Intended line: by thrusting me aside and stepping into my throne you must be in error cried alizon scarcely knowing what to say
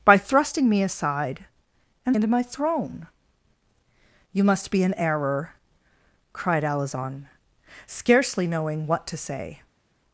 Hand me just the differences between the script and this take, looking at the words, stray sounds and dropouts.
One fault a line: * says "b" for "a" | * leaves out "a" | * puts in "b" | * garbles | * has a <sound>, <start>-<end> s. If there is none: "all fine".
* leaves out "stepping"